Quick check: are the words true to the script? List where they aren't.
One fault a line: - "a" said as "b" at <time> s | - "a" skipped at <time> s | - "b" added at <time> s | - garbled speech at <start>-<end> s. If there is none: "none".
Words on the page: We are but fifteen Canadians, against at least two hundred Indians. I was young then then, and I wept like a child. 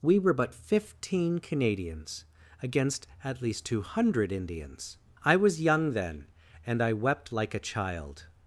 - "are" said as "were" at 0.2 s
- "then" skipped at 6.3 s